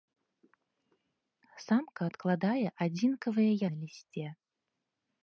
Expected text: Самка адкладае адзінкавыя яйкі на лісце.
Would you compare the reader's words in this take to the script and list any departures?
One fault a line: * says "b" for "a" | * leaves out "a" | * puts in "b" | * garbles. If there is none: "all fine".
* leaves out "яйкі"